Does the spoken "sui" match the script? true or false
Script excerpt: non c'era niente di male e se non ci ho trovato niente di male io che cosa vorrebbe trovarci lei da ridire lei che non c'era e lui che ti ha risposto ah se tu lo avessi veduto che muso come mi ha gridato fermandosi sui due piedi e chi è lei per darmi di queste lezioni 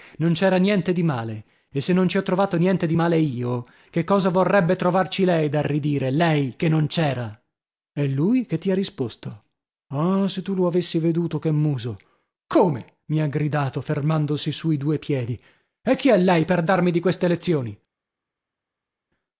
true